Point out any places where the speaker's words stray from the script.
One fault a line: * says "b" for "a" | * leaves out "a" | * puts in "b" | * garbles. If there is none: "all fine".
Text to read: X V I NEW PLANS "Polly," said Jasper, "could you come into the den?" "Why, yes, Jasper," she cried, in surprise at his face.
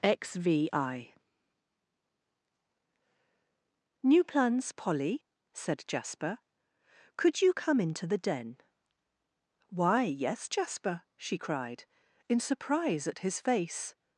all fine